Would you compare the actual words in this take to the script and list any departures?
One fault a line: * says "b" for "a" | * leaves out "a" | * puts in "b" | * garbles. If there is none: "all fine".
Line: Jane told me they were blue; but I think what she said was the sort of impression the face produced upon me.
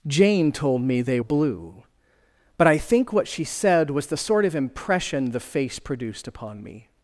* leaves out "were"